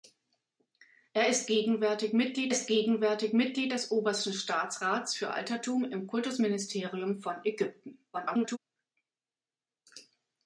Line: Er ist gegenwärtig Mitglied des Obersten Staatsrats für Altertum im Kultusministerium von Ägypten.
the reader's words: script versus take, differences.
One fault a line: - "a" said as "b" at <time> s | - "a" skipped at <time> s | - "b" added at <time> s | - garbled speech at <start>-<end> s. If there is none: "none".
- "ist gegenwärtig Mitglied" added at 2.5 s
- garbled speech at 8.1-8.6 s